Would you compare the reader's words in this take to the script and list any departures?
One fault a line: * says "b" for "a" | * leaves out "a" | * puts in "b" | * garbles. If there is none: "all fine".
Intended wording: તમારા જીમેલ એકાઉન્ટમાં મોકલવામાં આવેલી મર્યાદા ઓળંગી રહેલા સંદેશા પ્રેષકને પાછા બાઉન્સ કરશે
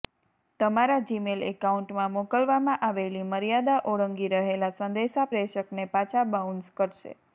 all fine